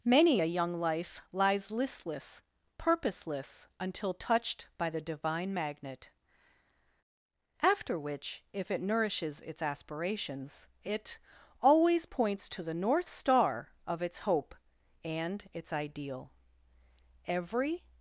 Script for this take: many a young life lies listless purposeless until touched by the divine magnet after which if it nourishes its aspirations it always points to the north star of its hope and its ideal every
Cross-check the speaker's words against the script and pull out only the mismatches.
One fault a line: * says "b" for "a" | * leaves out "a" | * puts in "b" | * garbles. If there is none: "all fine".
all fine